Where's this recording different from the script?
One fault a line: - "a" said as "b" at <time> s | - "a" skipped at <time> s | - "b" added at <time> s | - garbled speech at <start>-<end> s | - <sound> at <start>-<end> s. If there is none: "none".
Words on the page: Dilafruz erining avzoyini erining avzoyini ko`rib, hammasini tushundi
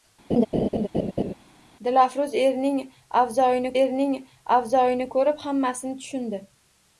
- laugh at 0.3-1.3 s